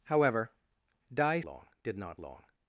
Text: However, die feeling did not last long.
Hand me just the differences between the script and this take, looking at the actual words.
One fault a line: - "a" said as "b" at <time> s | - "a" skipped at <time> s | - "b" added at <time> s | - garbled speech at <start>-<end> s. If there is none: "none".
- "feeling" said as "long" at 1.4 s
- "last" skipped at 2.2 s